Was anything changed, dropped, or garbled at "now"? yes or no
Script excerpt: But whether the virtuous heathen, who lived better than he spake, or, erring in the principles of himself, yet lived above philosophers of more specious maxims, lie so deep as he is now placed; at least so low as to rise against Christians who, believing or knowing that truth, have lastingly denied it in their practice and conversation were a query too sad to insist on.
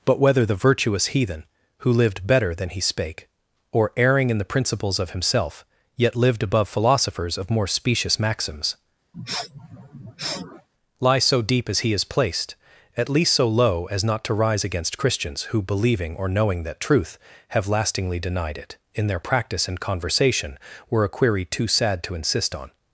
yes